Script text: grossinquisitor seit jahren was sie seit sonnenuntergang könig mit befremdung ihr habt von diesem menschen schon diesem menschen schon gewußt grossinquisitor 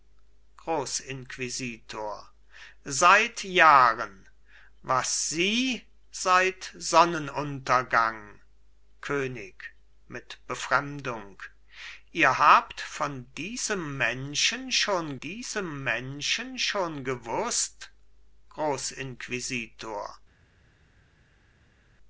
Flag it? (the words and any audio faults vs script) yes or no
no